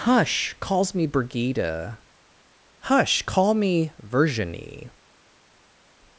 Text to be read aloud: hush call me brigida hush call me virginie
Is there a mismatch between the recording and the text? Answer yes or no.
yes